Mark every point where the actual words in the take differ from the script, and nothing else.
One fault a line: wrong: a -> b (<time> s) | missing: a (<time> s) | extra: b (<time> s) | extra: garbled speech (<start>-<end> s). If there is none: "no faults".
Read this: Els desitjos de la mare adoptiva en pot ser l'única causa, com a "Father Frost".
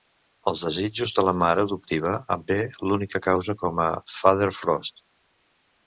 missing: pot (2.5 s)